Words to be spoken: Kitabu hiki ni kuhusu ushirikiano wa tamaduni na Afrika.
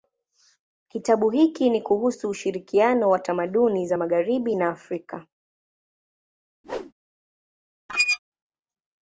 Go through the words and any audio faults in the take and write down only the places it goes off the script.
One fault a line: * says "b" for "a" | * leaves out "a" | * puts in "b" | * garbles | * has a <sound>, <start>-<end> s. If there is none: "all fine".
* puts in "za magharibi"
* has a whoosh, 6.6-6.9 s
* has a squeak, 7.9-8.2 s